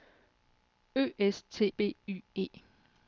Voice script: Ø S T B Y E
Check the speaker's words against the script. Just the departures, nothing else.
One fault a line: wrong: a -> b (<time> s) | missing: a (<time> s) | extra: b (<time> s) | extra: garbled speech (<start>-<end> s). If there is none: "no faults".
no faults